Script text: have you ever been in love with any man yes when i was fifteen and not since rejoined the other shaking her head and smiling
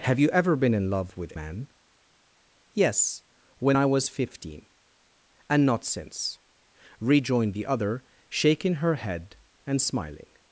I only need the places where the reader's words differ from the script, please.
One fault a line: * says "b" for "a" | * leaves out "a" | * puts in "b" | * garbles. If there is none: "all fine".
* leaves out "any"